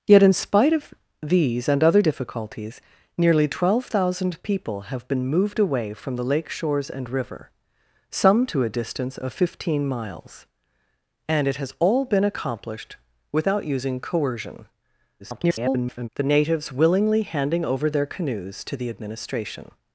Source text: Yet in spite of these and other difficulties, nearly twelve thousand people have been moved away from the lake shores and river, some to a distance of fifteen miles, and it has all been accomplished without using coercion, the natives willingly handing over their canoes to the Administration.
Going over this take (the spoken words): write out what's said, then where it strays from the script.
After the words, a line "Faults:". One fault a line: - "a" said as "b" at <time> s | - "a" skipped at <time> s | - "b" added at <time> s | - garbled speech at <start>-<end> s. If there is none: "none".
Yet in spite of these and other difficulties, nearly twelve thousand people have been moved away from the lake shores and river, some to a distance of fifteen miles, and it has all been accomplished without using coercion, [garbled] the natives willingly handing over their canoes to the Administration.
Faults:
- garbled speech at 15.2-16.1 s